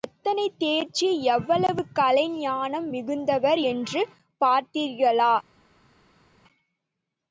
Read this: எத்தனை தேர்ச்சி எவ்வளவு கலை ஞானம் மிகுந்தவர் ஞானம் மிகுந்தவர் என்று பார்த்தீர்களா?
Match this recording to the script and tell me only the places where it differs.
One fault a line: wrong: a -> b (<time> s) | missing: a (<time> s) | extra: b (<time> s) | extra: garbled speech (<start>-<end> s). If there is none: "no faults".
missing: ஞானம் மிகுந்தவர் (3.6 s)